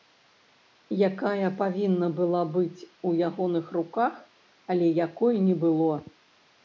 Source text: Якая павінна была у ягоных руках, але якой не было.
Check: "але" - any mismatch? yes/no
no